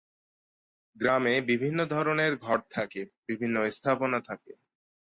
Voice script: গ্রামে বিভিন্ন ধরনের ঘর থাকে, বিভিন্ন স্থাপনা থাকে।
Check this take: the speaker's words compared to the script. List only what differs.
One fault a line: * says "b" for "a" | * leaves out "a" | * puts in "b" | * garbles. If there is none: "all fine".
all fine